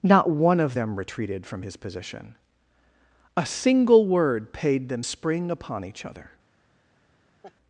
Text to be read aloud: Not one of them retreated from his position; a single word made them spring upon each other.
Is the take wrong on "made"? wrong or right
wrong